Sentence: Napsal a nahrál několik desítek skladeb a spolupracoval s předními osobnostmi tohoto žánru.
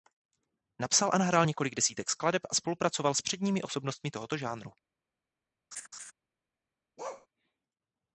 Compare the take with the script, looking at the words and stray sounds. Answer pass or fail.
fail